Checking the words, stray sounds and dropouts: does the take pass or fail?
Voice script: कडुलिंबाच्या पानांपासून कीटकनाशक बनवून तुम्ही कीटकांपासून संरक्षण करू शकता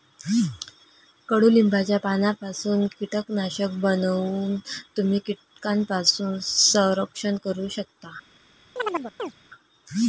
fail